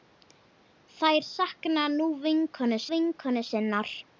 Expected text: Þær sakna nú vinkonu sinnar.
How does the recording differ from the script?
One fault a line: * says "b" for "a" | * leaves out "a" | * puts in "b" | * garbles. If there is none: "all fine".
* puts in "vinkonu"